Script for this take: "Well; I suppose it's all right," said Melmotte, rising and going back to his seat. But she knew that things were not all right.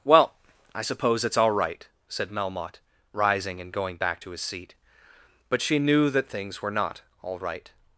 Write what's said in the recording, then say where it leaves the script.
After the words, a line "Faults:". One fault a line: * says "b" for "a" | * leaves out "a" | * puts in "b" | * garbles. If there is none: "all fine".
"Well; I suppose it's all right," said Melmotte, rising and going back to his seat. But she knew that things were not all right.
Faults:
all fine